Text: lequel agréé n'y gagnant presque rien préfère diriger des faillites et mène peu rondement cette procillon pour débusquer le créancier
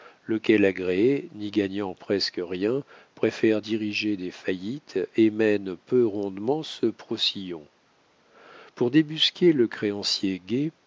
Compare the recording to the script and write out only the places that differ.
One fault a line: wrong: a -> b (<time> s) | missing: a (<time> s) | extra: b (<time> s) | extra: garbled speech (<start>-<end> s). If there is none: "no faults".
wrong: cette -> ce (6.6 s)